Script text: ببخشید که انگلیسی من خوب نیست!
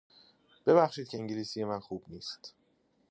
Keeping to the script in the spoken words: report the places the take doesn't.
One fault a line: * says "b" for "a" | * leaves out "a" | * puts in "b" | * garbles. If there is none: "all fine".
all fine